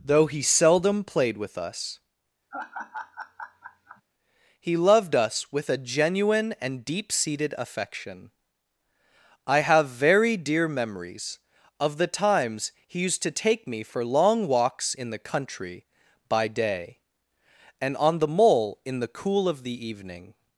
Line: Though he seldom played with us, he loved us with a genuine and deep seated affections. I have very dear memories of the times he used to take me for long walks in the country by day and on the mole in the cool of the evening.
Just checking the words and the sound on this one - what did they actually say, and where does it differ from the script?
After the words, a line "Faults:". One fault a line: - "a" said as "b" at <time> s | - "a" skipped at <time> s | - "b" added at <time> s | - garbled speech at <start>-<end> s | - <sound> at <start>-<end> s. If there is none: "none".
Though he seldom played with us, he loved us with a genuine and deep seated affection. I have very dear memories of the times he used to take me for long walks in the country by day and on the mole in the cool of the evening.
Faults:
- laugh at 2.5-4.0 s
- "affections" said as "affection" at 7.6 s